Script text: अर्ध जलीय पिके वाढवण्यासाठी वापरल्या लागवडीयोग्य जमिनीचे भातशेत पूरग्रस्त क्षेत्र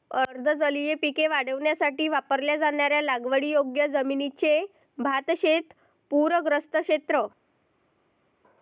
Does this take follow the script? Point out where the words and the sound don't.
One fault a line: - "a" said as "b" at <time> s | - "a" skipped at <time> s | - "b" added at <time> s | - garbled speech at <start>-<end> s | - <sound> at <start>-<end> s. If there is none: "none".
- "जाणाऱ्या" added at 2.6 s